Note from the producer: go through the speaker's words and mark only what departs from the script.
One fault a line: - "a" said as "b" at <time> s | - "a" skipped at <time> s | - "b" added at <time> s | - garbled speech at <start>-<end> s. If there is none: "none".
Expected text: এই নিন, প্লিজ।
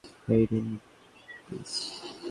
none